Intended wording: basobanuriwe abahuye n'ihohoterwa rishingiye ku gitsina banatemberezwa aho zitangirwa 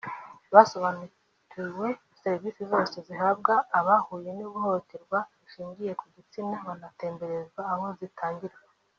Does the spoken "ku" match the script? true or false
true